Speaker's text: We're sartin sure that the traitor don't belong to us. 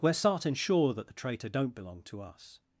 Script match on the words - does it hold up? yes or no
yes